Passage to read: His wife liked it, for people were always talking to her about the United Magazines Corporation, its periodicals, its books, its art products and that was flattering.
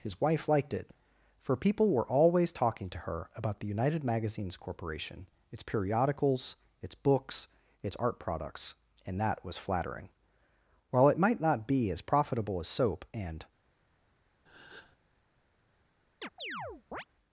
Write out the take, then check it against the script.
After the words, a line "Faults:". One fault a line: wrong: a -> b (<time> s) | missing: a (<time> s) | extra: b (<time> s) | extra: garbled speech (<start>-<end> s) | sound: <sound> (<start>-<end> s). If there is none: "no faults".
His wife liked it, for people were always talking to her about the United Magazines Corporation, its periodicals, its books, its art products and that was flattering. While it might not be as profitable as soap and
Faults:
extra: While it might not be as profitable as soap and (10.9 s)
sound: breath (14.5-15.0 s)
sound: chirp (16.2-17.0 s)